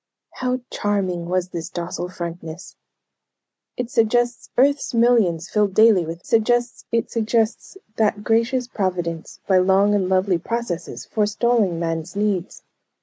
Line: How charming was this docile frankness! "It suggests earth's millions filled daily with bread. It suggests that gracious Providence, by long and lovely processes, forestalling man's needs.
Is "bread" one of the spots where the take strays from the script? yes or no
yes